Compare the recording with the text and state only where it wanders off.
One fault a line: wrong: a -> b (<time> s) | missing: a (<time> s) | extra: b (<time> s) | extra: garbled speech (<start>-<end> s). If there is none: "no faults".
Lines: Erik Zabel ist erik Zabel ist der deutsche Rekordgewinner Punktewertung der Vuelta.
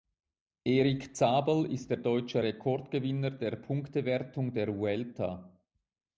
missing: erik Zabel ist (1.9 s)
extra: der (3.3 s)